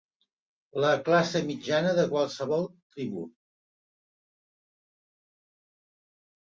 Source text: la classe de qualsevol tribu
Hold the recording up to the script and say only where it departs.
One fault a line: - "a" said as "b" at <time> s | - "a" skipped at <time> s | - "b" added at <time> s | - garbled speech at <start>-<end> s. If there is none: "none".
- "mitjana" added at 1.5 s